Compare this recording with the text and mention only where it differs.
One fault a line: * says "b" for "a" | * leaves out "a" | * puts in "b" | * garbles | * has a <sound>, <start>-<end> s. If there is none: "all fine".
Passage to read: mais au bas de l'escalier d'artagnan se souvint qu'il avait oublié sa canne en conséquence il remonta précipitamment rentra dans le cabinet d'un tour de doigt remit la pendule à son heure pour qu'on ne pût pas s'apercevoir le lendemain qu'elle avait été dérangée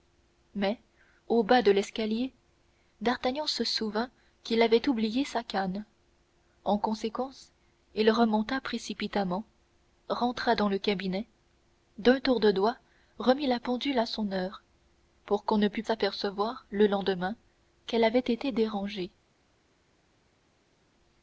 * leaves out "pas"